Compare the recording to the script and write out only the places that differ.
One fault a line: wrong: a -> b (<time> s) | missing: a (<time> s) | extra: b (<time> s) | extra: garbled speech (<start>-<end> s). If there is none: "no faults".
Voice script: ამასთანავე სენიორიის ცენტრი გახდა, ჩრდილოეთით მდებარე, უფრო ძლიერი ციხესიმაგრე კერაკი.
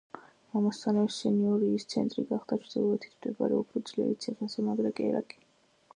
no faults